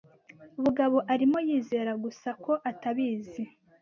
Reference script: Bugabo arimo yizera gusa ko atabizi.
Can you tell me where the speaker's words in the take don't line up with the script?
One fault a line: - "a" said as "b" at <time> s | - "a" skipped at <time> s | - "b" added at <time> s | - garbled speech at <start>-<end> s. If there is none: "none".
none